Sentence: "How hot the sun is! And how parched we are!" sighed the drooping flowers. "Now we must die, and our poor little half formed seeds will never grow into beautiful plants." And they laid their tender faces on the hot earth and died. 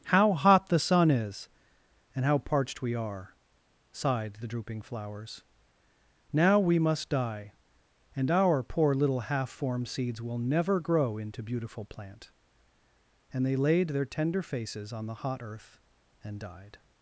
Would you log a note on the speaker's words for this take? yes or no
yes